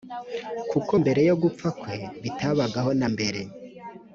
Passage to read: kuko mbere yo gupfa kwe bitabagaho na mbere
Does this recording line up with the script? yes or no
yes